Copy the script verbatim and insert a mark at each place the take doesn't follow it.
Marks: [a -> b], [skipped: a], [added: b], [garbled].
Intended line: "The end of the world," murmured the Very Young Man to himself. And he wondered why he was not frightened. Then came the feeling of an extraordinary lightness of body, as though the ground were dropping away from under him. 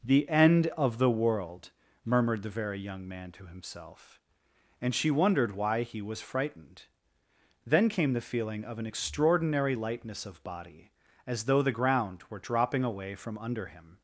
"The end of the world," murmured the Very Young Man to himself. And [he -> she] wondered why he was [skipped: not] frightened. Then came the feeling of an extraordinary lightness of body, as though the ground were dropping away from under him.